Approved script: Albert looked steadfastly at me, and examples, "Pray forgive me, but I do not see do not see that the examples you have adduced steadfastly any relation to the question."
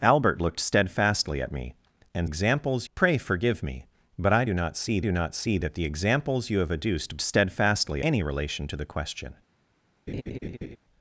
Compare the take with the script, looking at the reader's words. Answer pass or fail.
pass